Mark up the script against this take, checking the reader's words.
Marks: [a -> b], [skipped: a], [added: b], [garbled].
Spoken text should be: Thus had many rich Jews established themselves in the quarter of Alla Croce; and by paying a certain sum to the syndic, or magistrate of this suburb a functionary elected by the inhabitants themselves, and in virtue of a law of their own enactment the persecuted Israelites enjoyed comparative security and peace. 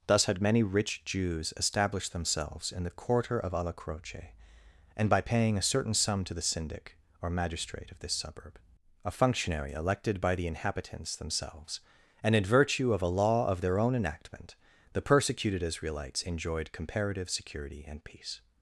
Thus had many rich Jews established themselves in the quarter of Alla Croce; and by paying a certain sum to the syndic, or magistrate of this suburb a functionary elected by the inhabitants themselves, and in virtue of a law of their own enactment the persecuted Israelites enjoyed comparative security and peace.